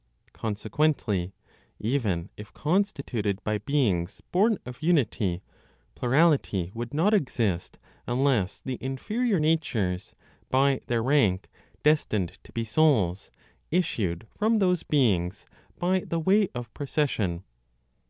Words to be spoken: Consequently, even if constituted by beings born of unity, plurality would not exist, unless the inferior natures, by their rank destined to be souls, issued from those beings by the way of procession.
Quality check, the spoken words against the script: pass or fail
pass